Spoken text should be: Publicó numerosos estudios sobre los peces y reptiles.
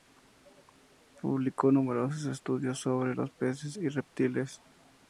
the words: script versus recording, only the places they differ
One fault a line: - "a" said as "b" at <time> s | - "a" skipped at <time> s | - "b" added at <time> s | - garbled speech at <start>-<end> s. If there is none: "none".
none